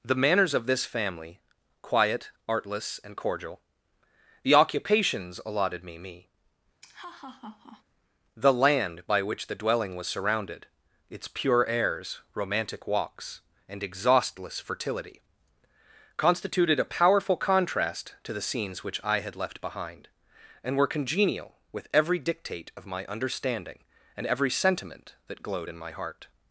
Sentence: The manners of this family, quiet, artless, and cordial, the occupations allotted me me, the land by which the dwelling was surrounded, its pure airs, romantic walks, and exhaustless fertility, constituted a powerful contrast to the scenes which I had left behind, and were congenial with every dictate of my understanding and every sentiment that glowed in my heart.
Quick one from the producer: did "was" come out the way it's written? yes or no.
yes